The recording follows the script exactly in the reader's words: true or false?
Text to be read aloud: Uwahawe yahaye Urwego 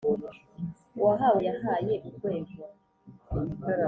true